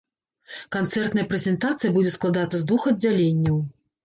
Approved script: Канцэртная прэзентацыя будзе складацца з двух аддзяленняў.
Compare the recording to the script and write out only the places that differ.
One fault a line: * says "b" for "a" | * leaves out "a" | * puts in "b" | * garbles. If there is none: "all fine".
all fine